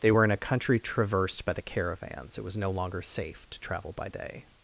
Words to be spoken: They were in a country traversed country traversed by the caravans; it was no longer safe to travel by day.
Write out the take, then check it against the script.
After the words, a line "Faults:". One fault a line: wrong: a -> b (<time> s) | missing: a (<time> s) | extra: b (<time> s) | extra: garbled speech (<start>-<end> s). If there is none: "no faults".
They were in a country traversed by the caravans; it was no longer safe to travel by day.
Faults:
missing: country traversed (1.5 s)